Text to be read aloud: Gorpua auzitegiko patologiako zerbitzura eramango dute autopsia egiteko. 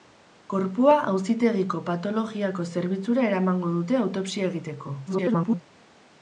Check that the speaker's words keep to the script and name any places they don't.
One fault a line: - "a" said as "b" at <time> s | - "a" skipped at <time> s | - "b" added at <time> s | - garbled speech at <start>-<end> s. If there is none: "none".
- garbled speech at 5.1-5.6 s